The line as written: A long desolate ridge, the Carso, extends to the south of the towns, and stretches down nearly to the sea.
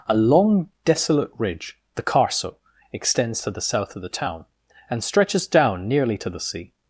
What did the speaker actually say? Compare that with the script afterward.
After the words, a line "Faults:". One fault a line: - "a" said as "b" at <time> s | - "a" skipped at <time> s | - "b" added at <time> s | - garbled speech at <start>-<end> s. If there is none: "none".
A long desolate ridge, the Carso, extends to the south of the town, and stretches down nearly to the sea.
Faults:
- "towns" said as "town" at 4.1 s